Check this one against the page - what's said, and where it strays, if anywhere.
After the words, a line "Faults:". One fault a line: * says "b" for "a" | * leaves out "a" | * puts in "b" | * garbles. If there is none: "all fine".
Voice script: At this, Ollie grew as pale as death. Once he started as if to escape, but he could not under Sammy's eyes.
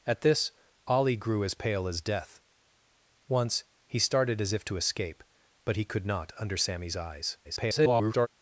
At this, Ollie grew as pale as death. Once he started as if to escape, but he could not under Sammy's eyes. [garbled]
Faults:
* garbles